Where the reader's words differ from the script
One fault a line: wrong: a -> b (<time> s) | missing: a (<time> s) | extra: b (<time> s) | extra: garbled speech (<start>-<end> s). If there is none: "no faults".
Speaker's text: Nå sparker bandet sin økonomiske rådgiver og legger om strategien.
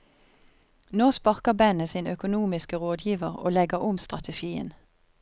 no faults